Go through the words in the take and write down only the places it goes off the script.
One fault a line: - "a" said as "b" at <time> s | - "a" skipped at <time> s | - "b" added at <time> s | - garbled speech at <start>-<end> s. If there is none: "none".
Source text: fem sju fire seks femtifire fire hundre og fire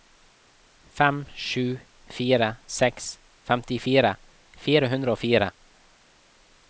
none